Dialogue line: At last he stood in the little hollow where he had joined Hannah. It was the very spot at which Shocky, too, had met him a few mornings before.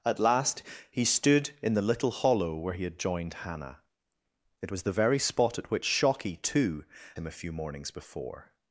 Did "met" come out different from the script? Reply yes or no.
yes